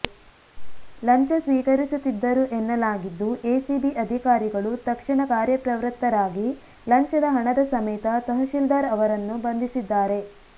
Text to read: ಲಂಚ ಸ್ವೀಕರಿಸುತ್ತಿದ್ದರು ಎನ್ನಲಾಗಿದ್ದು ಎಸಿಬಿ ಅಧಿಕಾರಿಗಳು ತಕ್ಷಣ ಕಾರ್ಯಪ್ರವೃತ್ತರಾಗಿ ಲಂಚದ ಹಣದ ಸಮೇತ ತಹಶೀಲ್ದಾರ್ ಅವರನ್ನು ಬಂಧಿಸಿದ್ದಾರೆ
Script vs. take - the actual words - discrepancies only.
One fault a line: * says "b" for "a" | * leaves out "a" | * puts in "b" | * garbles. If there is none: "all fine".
all fine